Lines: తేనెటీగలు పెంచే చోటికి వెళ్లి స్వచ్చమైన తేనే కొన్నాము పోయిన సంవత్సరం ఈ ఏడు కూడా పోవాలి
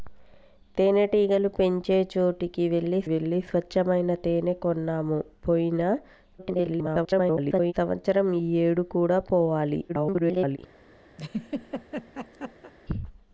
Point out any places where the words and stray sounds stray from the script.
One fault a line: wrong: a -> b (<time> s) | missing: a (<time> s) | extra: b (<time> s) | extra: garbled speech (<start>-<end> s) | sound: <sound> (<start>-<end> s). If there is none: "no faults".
extra: వెళ్లి (3.0 s)
extra: garbled speech (6.4-7.7 s)
extra: garbled speech (9.9-10.6 s)
sound: laugh (11.2-12.7 s)